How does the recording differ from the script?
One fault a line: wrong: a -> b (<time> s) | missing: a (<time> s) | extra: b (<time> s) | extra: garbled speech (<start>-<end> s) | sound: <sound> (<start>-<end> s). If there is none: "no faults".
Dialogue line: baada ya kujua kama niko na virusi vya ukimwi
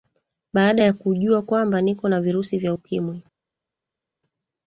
wrong: kama -> kwamba (1.4 s)